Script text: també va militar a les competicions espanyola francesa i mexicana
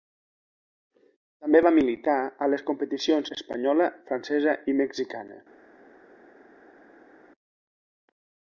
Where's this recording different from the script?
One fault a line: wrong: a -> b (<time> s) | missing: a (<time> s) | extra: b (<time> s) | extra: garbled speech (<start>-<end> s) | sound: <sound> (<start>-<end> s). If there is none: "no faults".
no faults